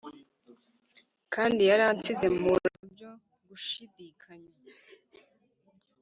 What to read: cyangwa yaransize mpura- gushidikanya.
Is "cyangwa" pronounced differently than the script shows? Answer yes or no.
yes